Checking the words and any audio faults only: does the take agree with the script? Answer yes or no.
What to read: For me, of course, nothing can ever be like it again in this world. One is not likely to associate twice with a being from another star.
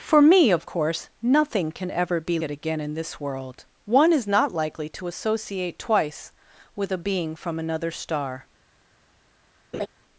no